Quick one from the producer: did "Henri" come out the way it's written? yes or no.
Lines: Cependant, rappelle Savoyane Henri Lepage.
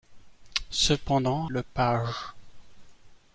no